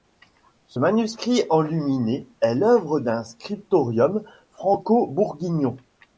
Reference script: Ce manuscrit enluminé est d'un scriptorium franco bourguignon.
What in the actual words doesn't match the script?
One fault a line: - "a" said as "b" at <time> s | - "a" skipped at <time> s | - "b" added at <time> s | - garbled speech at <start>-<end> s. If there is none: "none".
- "l'œuvre" added at 2.5 s